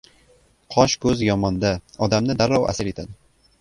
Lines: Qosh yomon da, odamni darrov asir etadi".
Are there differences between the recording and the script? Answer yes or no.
yes